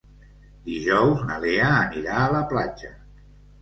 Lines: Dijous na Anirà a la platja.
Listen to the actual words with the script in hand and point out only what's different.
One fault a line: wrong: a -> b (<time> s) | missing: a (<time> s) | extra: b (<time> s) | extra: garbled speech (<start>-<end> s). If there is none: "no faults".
extra: Lea (1.4 s)